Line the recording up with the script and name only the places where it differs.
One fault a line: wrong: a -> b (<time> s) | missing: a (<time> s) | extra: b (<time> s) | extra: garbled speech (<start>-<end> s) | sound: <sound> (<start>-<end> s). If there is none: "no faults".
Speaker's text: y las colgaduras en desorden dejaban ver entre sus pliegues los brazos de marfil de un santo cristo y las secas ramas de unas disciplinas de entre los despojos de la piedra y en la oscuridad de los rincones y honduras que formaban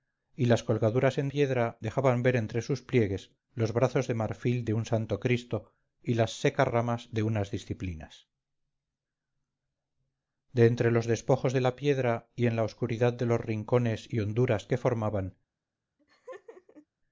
wrong: desorden -> piedra (1.3 s)
sound: laugh (16.0-16.9 s)